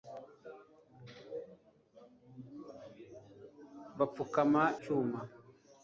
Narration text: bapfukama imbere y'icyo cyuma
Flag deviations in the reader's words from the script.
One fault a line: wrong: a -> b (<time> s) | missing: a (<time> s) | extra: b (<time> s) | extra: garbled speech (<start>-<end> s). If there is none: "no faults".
missing: imbere y'icyo (4.6 s)